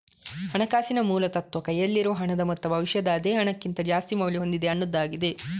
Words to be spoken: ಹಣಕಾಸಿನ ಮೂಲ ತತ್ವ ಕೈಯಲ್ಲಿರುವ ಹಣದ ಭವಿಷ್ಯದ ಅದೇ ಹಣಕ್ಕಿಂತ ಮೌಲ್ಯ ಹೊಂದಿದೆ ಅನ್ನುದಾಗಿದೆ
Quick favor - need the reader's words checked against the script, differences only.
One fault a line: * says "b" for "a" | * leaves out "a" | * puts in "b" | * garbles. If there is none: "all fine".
* puts in "ಮೊತ್ತ"
* puts in "ಜಾಸ್ತಿ"